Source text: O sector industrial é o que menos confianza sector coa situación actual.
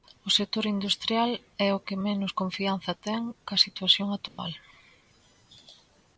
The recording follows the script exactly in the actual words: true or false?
false